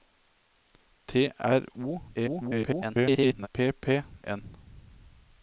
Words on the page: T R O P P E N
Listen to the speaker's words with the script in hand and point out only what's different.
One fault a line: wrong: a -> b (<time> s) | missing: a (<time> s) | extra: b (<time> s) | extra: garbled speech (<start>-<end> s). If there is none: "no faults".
extra: garbled speech (2.1-3.5 s)
missing: E (4.0 s)